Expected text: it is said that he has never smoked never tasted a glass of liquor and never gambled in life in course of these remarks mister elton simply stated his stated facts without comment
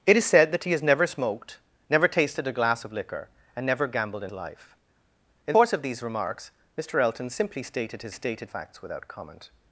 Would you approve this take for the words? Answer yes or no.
yes